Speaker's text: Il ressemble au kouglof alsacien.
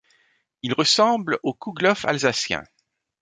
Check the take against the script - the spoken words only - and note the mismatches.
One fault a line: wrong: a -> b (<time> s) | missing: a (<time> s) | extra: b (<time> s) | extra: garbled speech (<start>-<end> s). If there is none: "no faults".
no faults